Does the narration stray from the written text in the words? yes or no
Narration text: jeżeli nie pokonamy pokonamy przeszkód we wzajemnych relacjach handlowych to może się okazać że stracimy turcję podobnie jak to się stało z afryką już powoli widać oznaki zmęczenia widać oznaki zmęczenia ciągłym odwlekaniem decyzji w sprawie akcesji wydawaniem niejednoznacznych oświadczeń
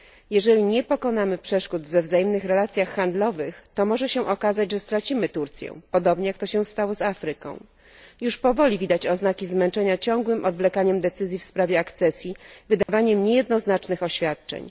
yes